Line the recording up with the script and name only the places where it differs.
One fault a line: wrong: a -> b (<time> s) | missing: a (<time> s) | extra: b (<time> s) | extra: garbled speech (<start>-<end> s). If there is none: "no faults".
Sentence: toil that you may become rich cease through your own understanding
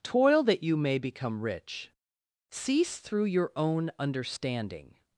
no faults